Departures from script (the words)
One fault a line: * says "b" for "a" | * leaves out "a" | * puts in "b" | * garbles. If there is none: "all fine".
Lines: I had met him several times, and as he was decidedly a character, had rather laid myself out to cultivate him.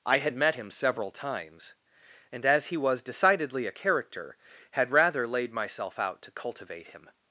all fine